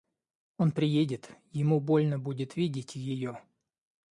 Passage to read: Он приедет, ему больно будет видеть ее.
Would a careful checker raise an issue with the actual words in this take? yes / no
no